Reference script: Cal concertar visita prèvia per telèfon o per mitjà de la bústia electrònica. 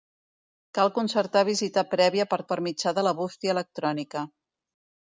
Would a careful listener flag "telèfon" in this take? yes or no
yes